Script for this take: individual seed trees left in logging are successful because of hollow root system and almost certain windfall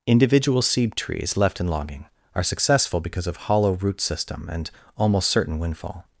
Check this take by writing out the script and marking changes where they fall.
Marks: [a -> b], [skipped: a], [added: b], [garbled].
individual seed trees left in logging are successful because of hollow root system and almost certain windfall